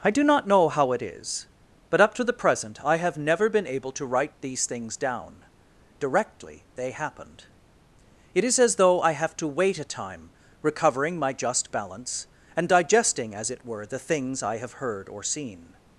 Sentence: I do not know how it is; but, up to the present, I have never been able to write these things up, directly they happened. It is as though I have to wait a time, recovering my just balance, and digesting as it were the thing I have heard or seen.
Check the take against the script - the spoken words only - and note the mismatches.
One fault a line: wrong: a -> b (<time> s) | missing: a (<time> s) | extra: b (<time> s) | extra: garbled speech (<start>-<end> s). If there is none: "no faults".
wrong: up -> down (5.0 s)
wrong: thing -> things (14.0 s)